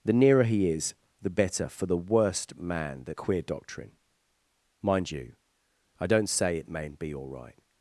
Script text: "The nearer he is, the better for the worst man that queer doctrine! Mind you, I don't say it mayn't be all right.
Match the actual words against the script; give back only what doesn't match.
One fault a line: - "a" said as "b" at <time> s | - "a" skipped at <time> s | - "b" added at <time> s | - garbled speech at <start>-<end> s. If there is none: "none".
none